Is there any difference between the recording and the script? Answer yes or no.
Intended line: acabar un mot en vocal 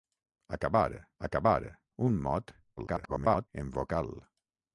yes